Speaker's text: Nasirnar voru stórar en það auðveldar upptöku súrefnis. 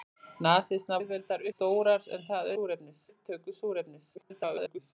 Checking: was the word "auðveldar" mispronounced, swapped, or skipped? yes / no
yes